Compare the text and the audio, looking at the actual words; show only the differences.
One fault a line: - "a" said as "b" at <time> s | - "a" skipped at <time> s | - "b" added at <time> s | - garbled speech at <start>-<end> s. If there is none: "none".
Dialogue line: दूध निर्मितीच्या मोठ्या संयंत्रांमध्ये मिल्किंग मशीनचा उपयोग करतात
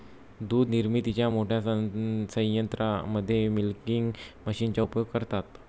none